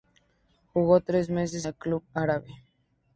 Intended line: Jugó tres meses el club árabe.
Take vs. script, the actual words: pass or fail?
pass